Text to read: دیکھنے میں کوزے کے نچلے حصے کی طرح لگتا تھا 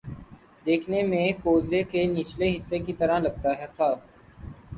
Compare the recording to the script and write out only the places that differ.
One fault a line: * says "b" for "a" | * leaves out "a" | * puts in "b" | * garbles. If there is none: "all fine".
all fine